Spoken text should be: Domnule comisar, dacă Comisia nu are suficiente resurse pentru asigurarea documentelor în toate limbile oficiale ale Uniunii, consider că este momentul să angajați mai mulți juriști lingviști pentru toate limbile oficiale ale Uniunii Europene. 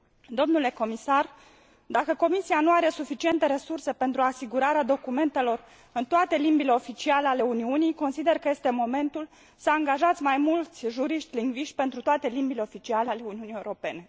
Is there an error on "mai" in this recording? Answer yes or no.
no